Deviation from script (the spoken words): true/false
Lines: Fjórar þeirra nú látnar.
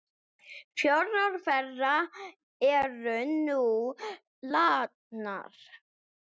true